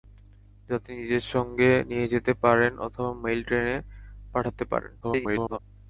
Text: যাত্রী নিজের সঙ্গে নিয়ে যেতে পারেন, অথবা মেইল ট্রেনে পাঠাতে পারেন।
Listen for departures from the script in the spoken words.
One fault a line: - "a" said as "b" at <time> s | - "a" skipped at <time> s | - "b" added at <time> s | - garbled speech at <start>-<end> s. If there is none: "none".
- garbled speech at 5.0-5.6 s